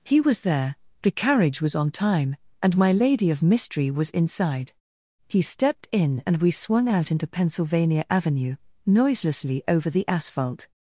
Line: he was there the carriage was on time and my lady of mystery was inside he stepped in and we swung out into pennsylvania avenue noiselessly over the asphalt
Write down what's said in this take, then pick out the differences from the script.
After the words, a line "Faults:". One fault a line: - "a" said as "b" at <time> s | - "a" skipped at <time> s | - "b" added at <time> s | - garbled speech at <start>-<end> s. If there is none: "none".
he was there the carriage was on time and my lady of mystery was inside he stepped in and we swung out into pennsylvania avenue noiselessly over the asphalt
Faults:
none